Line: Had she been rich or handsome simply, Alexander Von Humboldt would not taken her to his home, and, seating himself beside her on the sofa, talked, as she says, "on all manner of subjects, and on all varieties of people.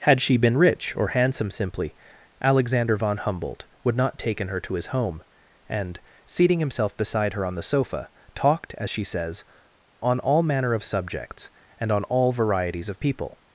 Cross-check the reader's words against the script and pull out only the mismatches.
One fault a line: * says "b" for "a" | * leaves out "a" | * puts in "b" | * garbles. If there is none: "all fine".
all fine